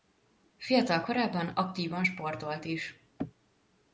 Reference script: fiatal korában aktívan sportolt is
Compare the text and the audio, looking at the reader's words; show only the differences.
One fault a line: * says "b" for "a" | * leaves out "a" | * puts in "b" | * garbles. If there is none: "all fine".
all fine